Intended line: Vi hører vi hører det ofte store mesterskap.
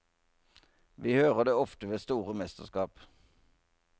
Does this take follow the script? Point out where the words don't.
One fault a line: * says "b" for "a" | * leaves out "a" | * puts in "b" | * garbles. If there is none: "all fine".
* leaves out "vi hører"
* puts in "ved"